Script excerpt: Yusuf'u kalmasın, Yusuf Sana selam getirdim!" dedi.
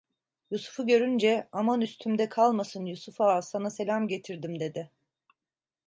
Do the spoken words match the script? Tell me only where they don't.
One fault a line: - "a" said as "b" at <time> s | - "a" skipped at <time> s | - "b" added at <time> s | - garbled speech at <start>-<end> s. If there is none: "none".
- "görünce Aman üstümde" added at 0.9 s
- "Ağa" added at 3.2 s